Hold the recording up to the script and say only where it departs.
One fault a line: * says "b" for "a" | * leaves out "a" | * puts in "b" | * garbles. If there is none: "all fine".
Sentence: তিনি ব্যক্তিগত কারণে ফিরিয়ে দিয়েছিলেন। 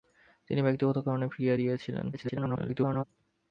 * garbles